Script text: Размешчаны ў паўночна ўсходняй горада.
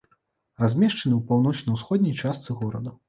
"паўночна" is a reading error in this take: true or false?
false